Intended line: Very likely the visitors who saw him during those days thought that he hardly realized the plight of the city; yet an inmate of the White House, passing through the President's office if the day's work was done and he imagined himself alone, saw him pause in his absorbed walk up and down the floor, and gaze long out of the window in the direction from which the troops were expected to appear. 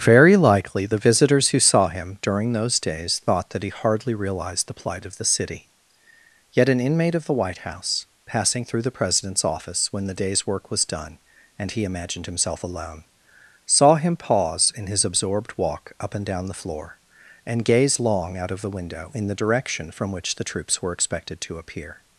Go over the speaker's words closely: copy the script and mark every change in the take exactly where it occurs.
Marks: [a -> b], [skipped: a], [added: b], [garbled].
Very likely the visitors who saw him during those days thought that he hardly realized the plight of the city; yet an inmate of the White House, passing through the President's office [if -> when] the day's work was done and he imagined himself alone, saw him pause in his absorbed walk up and down the floor, and gaze long out of the window in the direction from which the troops were expected to appear.